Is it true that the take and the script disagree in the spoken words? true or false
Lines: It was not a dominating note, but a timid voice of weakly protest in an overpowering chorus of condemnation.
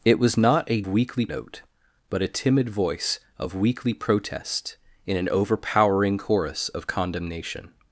true